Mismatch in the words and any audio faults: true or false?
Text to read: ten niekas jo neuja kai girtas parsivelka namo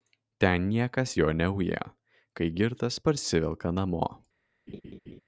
true